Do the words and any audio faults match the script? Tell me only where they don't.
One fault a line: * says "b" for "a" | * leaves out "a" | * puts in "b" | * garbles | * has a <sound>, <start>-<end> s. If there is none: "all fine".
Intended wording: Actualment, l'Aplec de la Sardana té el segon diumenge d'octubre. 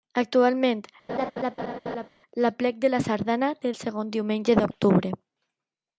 * has a laugh, 1.1-2.1 s